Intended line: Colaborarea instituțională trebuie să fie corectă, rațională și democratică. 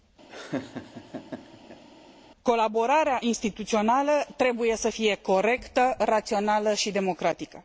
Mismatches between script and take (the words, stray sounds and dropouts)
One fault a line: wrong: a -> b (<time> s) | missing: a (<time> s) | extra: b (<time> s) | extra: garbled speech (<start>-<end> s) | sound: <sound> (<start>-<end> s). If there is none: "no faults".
sound: laugh (0.3-1.8 s)